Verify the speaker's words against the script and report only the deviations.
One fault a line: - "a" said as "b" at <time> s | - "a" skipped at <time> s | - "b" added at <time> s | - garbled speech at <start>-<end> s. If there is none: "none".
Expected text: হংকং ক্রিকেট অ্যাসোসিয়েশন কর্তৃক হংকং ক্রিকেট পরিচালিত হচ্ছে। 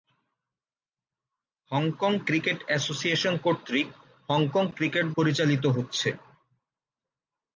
none